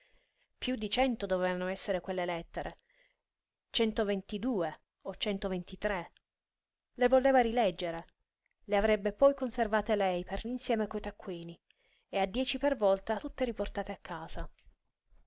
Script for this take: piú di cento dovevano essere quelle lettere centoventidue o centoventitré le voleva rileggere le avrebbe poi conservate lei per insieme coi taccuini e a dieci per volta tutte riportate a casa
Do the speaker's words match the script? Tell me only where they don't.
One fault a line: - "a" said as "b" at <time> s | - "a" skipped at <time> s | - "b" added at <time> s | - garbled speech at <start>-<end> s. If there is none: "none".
none